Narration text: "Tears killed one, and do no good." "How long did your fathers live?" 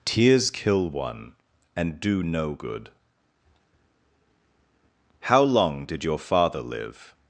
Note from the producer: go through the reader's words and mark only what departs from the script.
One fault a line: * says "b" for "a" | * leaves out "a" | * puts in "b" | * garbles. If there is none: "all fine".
* says "kill" for "killed"
* says "father" for "fathers"